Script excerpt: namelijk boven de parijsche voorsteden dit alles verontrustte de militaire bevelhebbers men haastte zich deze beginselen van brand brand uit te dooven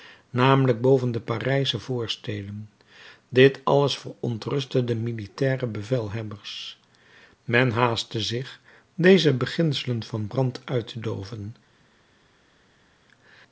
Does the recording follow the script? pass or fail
fail